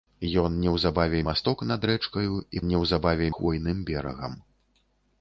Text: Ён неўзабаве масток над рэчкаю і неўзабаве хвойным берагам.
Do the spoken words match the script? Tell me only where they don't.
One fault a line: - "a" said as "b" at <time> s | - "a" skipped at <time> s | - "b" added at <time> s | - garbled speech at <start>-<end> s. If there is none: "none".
none